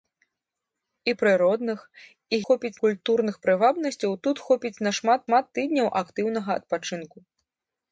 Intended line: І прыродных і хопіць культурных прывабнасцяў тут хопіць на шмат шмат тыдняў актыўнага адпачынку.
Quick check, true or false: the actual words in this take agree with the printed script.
true